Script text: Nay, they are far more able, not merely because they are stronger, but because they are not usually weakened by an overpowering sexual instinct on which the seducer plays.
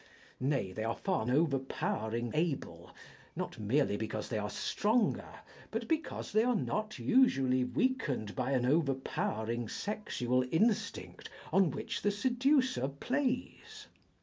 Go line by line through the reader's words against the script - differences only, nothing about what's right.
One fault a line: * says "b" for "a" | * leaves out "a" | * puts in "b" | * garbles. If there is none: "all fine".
* says "overpowering" for "more"